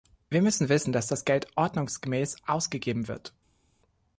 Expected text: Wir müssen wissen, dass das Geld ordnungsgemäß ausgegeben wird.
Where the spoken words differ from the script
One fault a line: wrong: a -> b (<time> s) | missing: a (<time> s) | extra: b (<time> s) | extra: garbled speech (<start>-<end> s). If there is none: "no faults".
no faults